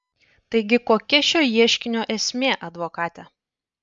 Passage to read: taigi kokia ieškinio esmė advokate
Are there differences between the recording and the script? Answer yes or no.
yes